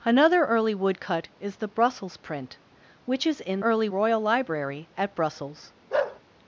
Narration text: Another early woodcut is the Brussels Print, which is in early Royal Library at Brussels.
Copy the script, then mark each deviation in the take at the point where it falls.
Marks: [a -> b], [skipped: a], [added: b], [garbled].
Another early woodcut is the Brussels Print, which is in early Royal Library at Brussels.